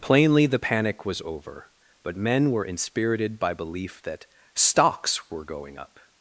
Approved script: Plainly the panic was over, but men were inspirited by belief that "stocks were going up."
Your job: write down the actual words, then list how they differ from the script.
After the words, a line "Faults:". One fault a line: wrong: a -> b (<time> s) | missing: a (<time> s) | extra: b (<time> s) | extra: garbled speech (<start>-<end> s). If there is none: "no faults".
Plainly the panic was over, but men were inspirited by belief that "stocks were going up."
Faults:
no faults